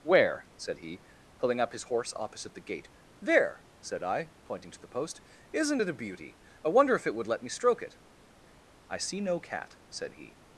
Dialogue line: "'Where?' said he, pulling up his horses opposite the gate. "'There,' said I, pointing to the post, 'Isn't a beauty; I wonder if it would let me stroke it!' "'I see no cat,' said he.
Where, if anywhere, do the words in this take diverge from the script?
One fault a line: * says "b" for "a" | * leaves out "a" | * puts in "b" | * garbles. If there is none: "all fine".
* says "horse" for "horses"
* puts in "it"